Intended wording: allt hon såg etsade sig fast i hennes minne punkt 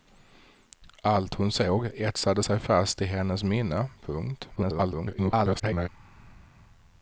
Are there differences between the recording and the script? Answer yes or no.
yes